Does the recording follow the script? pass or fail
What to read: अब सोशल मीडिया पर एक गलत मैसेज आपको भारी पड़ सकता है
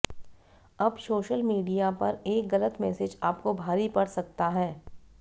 pass